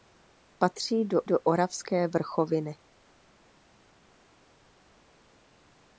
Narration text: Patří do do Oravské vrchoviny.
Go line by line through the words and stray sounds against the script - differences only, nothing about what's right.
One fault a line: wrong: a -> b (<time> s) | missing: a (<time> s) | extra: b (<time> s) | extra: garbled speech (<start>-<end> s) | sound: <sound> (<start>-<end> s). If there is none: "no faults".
no faults